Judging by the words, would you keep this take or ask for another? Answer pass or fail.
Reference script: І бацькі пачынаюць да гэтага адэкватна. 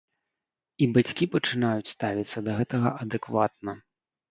fail